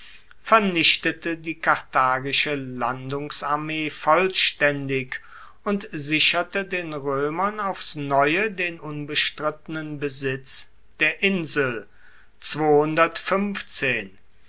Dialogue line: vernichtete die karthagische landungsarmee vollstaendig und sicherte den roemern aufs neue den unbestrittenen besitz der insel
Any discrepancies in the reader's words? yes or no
no